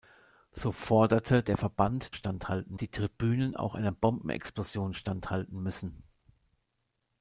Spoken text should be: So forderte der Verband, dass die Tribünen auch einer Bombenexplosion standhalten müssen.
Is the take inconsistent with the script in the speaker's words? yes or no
yes